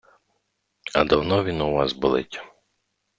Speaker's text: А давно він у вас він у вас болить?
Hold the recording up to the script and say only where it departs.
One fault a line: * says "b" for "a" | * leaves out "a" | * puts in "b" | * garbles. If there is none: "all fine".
* leaves out "він у вас"